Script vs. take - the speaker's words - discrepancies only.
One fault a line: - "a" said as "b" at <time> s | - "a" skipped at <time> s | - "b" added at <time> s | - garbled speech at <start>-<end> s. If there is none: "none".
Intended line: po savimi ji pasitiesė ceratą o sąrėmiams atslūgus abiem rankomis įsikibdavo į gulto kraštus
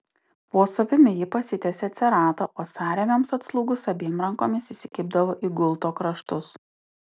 none